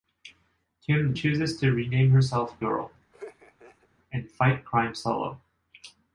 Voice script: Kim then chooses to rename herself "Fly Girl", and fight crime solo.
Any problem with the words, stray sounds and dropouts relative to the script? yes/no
yes